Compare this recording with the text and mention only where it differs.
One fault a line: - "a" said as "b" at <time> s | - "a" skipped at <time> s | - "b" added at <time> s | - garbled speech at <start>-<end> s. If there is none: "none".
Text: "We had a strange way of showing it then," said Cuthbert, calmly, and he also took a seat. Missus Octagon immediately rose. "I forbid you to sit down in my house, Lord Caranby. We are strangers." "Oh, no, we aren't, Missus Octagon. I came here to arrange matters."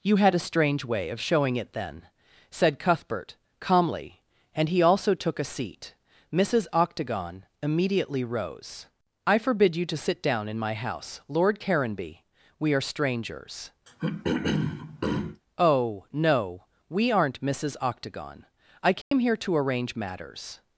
- "We" said as "You" at 0.0 s